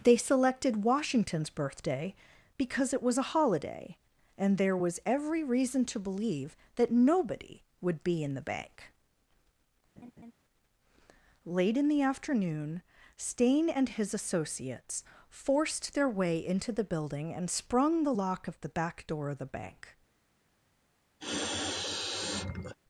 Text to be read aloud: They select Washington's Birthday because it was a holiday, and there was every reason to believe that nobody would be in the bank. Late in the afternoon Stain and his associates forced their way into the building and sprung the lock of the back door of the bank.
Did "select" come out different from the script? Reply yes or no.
yes